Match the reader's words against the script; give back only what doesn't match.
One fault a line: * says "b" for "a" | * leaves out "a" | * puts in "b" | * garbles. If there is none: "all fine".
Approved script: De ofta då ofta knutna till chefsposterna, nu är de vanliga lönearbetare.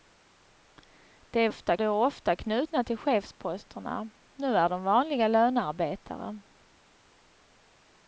all fine